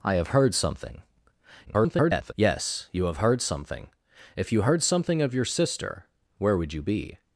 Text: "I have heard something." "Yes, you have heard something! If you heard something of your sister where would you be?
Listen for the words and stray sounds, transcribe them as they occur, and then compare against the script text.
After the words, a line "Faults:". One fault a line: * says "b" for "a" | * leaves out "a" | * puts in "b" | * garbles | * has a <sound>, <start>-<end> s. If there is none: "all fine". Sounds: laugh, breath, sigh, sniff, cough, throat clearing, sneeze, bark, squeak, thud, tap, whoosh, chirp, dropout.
"I have heard something." [garbled] "Yes, you have heard something! If you heard something of your sister where would you be?
Faults:
* garbles